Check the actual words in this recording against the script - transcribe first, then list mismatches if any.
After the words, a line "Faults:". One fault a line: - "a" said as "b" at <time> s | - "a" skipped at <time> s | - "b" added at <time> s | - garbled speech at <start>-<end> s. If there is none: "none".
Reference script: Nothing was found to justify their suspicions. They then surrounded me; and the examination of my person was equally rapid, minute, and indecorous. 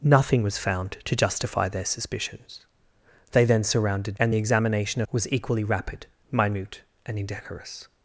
Nothing was found to justify their suspicions. They then surrounded; and the examination was equally rapid, minute, and indecorous.
Faults:
- "me" skipped at 4.2 s
- "of my person" skipped at 5.0 s